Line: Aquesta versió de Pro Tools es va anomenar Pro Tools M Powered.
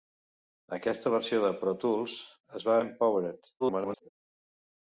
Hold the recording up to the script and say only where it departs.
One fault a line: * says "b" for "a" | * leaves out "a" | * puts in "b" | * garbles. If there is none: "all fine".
* leaves out "anomenar Pro Tools"
* garbles